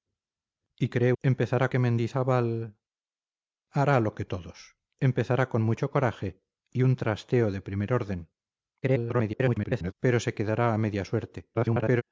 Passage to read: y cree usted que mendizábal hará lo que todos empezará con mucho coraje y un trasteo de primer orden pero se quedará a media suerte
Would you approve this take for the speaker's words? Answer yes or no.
no